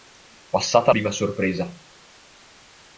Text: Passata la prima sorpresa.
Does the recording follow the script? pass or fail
fail